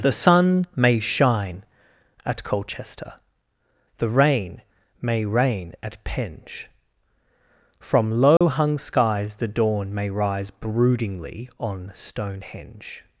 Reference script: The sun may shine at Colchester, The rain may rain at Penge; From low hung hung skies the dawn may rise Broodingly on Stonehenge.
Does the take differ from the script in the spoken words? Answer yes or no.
yes